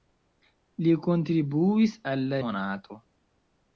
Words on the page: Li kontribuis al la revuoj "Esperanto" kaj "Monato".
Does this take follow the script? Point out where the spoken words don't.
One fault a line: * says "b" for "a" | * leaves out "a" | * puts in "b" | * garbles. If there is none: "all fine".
* leaves out "revuoj Esperanto kaj"